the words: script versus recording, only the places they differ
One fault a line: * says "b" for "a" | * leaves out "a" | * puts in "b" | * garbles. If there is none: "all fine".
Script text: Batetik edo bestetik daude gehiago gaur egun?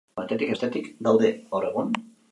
* leaves out "edo"
* leaves out "gehiago"